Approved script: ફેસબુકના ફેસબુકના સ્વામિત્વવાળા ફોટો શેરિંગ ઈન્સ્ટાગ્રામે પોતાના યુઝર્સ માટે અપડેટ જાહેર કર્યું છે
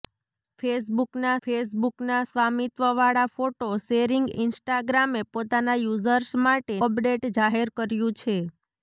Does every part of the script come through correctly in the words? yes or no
yes